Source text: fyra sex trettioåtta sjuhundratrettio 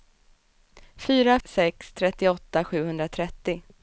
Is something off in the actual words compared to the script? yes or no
no